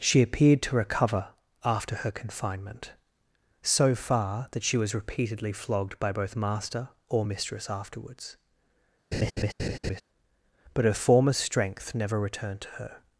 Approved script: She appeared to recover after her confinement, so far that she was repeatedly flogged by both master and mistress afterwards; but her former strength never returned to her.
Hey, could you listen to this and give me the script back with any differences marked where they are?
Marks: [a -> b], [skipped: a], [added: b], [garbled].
She appeared to recover after her confinement, so far that she was repeatedly flogged by both master [and -> or] mistress afterwards; but her former strength never returned to her.